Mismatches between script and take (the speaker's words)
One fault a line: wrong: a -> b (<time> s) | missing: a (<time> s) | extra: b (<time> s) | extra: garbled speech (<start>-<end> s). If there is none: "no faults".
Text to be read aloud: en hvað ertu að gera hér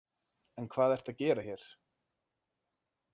no faults